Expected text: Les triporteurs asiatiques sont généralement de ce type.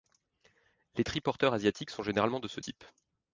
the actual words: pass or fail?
pass